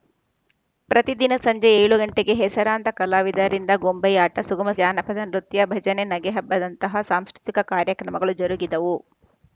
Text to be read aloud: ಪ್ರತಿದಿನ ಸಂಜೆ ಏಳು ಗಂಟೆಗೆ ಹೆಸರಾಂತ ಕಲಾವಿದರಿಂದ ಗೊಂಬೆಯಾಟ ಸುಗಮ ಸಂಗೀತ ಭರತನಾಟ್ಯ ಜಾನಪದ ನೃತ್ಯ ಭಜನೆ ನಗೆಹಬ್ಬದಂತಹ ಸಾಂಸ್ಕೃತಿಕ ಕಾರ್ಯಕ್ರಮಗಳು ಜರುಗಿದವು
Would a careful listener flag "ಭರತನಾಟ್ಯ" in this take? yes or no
yes